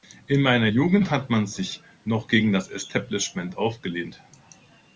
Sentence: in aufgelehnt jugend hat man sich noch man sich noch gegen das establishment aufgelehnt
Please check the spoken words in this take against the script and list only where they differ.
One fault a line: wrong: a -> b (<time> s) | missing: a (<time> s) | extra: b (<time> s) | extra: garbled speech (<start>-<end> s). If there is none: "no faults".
wrong: aufgelehnt -> meiner (0.4 s)
missing: man sich noch (2.3 s)